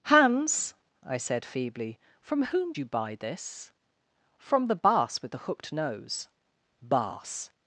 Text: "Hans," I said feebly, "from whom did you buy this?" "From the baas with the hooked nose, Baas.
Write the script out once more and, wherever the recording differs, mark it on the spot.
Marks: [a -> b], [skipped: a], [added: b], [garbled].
"Hans," I said feebly, "from whom [skipped: did] you buy this?" "From the baas with the hooked nose, Baas.